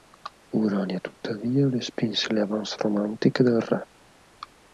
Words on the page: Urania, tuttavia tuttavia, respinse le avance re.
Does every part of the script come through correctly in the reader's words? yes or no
no